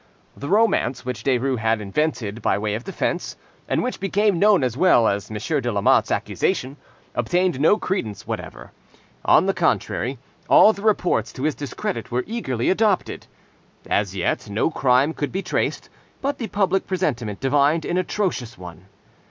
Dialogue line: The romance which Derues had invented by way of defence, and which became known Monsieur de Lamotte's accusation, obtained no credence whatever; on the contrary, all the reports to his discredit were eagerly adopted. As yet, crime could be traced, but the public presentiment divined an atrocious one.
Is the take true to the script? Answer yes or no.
no